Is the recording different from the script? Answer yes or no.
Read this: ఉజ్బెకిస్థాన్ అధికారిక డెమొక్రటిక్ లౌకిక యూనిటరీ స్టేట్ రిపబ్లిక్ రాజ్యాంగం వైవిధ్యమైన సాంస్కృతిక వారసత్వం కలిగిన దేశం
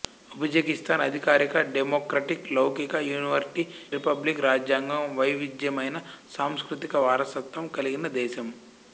yes